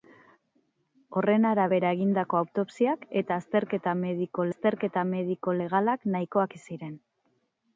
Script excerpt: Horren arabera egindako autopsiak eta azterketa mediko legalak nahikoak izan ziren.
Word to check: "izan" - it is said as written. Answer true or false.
false